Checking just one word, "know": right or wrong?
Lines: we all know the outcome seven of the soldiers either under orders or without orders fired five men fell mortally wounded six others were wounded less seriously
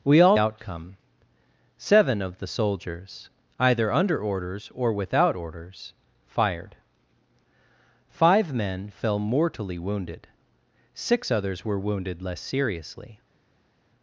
wrong